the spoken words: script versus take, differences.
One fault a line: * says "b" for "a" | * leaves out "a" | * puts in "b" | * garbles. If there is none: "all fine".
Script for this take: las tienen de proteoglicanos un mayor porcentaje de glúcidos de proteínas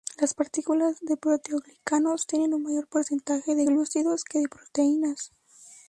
* says "partículas" for "tienen"
* puts in "tienen"
* puts in "que"